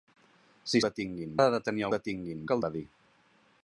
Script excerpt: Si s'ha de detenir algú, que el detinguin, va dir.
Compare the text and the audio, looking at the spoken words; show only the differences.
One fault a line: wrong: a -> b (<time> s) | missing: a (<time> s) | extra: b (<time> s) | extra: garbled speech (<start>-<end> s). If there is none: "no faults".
wrong: s'ha -> detinguin (0.9 s)
wrong: algú -> detinguin (2.0 s)
missing: detinguin (2.6 s)